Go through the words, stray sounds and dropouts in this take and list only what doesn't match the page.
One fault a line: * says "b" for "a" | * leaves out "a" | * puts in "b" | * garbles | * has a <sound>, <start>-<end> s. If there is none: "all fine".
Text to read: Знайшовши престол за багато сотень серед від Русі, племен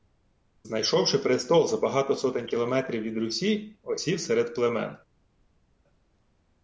* says "кілометрів" for "серед"
* puts in "осів серед"